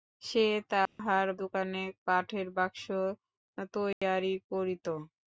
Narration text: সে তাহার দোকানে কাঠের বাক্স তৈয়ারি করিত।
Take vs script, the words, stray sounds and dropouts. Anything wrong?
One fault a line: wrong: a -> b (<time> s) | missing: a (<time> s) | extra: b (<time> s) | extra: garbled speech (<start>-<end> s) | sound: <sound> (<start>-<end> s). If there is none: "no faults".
sound: dropout (0.9-1.0 s)
sound: dropout (3.9-4.0 s)